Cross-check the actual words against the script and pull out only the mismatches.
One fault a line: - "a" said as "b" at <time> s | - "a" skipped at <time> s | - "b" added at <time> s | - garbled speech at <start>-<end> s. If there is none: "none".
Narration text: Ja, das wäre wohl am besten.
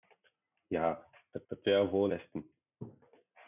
- "das" added at 1.5 s
- "am" skipped at 2.1 s